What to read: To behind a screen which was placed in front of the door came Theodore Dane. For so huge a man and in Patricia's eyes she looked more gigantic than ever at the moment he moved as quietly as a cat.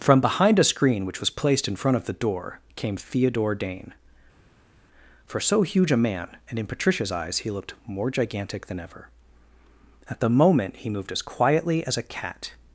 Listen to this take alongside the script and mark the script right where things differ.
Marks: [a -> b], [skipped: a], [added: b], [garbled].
[To -> From] behind a screen which was placed in front of the door came Theodore Dane. For so huge a man and in Patricia's eyes [she -> he] looked more gigantic than ever at the moment he moved as quietly as a cat.